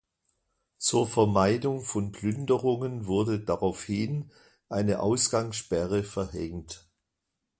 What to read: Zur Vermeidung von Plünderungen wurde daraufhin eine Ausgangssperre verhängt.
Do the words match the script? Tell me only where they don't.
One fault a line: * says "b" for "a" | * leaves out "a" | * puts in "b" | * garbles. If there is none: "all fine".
all fine